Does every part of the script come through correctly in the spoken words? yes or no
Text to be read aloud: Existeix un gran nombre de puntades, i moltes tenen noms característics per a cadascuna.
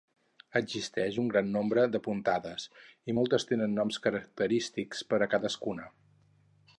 yes